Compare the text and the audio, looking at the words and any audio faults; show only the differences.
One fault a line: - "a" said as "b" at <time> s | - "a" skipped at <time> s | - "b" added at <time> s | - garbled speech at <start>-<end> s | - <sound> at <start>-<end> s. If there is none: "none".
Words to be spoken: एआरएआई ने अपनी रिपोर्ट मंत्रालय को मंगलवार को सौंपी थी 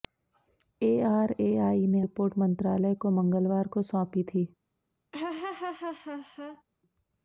- "अपनी" skipped at 2.0 s
- laugh at 5.1-6.6 s